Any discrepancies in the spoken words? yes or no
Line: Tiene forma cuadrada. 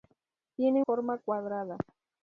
no